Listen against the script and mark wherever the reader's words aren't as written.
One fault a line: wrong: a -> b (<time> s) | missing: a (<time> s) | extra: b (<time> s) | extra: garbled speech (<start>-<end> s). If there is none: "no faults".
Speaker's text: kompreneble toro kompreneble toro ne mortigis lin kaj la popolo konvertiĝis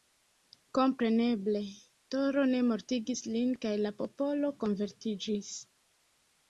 missing: kompreneble toro (2.5 s)